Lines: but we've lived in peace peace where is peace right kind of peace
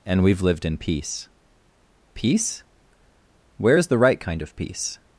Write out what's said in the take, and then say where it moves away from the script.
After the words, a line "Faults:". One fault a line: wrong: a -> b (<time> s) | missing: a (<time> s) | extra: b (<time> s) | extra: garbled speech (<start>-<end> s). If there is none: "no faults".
and we've lived in peace peace where is the right kind of peace
Faults:
wrong: but -> and (0.1 s)
wrong: peace -> the (3.9 s)